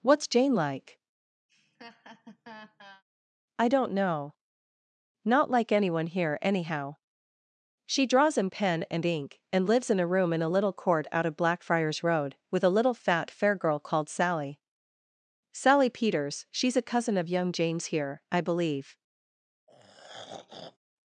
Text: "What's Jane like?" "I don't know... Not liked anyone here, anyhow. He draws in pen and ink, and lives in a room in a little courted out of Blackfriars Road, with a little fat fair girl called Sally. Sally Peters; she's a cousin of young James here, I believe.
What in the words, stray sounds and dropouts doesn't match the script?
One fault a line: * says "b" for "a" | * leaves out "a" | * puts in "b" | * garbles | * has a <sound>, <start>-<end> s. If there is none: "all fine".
* has a laugh, 1.5-3.0 s
* says "like" for "liked"
* says "She" for "He"
* says "court" for "courted"
* has a throat clearing, 19.7-20.8 s